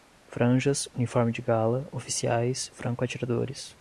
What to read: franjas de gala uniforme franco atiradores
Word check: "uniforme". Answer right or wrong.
wrong